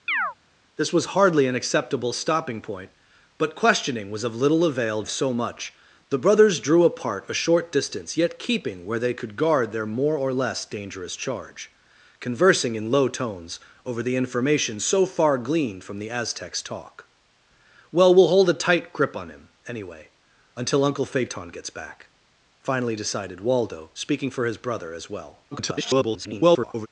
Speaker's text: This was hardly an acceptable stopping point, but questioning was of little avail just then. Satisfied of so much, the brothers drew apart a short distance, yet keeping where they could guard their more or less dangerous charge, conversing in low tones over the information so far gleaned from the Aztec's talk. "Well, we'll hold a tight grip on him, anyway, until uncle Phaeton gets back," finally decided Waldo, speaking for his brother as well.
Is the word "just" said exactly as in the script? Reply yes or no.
no